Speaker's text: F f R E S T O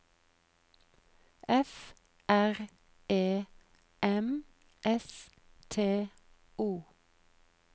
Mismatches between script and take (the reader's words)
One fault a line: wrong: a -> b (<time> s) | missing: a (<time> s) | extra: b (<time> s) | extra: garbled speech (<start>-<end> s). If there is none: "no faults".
missing: f (1.9 s)
extra: M (4.0 s)